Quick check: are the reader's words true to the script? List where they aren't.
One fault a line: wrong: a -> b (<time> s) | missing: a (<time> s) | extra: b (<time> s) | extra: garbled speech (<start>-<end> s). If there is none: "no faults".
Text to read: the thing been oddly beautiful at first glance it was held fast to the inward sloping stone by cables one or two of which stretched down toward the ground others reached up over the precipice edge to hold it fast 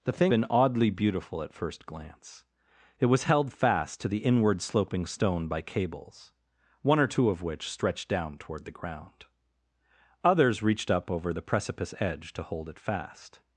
no faults